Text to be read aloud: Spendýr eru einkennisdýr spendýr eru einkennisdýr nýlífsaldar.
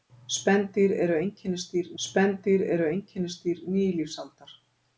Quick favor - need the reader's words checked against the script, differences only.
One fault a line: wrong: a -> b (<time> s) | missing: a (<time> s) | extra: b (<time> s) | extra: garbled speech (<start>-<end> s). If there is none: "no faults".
no faults